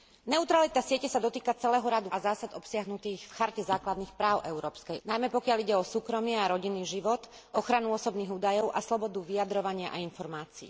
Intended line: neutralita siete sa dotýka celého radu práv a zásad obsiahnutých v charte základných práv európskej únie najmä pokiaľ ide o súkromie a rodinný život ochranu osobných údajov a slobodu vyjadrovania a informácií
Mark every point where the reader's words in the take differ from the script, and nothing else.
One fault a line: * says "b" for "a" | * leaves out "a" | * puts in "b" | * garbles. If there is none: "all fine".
* leaves out "práv"
* leaves out "únie"